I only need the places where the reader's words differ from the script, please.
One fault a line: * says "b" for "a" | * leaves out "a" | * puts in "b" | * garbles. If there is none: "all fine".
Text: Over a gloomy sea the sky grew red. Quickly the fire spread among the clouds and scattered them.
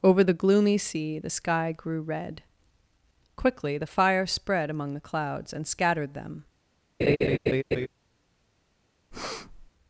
* says "the" for "a"